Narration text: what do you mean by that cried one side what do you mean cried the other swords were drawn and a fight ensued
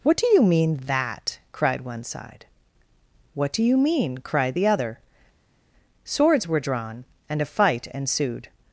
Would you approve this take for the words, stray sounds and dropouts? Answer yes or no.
no